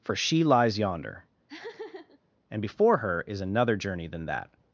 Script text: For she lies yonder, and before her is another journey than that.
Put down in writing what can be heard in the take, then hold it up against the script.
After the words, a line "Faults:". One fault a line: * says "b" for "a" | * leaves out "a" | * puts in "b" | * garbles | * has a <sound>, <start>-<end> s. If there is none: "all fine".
For she lies yonder, and before her is another journey than that.
Faults:
* has a laugh, 1.5-2.2 s